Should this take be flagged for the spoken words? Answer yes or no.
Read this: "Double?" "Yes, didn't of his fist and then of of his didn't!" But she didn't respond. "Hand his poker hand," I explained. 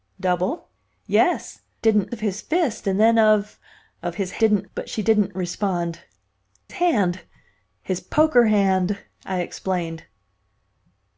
no